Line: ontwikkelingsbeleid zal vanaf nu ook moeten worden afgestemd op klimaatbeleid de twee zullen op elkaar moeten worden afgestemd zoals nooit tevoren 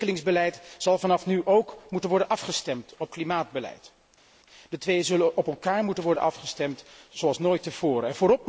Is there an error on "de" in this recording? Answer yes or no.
no